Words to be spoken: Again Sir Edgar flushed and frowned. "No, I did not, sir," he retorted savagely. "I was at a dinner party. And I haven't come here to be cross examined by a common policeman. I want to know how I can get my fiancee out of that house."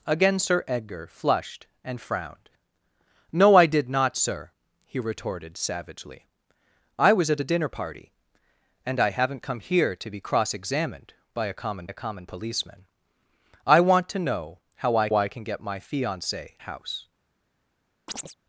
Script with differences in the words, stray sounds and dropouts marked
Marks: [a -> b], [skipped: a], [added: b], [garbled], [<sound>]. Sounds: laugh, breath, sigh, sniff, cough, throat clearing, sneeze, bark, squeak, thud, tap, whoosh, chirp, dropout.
Again Sir Edgar flushed and frowned. "No, I did not, sir," he retorted savagely. "I was at a dinner party. And I haven't come here to be cross examined by a common [added: a common] policeman. I want to know how I [added: I] can get my fiancee [skipped: out of that] house." [chirp]